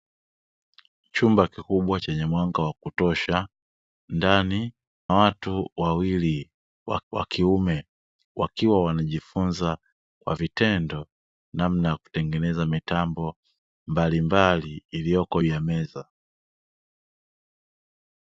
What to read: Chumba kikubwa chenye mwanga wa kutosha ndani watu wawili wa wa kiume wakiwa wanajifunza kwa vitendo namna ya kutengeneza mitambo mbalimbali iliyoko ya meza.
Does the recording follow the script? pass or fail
pass